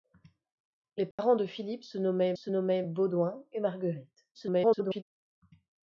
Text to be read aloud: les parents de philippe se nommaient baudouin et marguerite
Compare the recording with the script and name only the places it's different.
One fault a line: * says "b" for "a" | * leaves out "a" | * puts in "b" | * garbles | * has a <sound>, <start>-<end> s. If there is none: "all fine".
* has a dropout, 1.1-1.2 s
* puts in "se nommaient"
* garbles